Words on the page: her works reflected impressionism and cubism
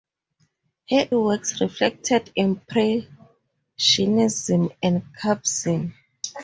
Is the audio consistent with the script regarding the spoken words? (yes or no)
yes